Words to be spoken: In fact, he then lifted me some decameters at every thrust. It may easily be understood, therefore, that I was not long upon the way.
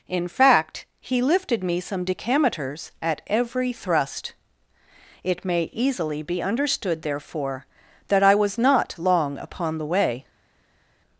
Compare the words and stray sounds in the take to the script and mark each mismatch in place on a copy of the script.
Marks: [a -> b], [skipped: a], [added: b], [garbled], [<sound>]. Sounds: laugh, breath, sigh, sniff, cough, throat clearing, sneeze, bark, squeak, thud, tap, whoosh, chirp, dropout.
In fact, he [skipped: then] lifted me some decameters at every thrust. It may easily be understood, therefore, that I was not long upon the way.